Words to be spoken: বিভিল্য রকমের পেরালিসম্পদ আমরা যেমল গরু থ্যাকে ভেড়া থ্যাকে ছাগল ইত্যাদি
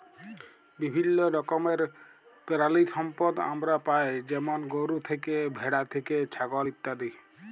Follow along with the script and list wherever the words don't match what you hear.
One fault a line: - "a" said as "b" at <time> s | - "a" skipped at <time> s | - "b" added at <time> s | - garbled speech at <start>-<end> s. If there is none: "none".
- "পাই" added at 3.9 s